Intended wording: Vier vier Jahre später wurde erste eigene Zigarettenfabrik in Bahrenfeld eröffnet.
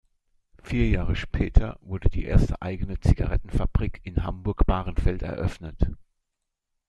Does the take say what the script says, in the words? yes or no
no